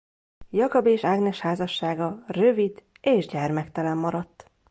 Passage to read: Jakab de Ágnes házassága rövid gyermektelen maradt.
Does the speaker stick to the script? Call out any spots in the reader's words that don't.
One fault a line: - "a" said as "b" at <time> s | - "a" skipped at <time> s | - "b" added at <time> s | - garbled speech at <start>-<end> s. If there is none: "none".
- "de" said as "és" at 0.8 s
- "és" added at 3.0 s